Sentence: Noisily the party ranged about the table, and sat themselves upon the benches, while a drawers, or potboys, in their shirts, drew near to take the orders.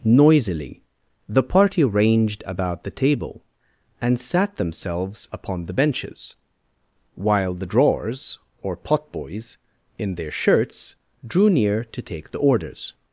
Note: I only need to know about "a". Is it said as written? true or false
false